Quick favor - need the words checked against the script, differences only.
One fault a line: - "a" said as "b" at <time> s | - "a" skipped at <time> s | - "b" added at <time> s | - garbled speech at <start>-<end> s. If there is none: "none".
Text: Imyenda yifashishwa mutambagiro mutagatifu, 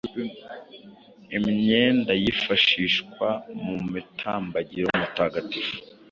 - "mu" added at 3.6 s